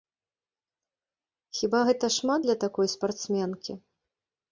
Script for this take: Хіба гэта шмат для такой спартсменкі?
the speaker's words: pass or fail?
pass